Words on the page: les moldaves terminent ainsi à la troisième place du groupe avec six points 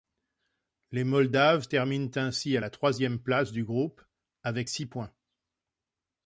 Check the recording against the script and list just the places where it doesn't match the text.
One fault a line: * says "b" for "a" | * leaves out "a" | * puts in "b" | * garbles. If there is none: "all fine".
all fine